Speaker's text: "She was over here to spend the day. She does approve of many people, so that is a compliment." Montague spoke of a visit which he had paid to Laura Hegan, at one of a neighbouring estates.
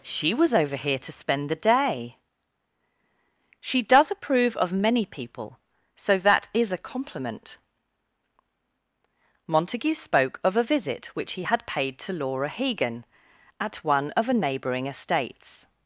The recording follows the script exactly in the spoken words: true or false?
true